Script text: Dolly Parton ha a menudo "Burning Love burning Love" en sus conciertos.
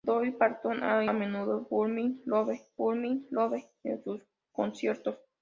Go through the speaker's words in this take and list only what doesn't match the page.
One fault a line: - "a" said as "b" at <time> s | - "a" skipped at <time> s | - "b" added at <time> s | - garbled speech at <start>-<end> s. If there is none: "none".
none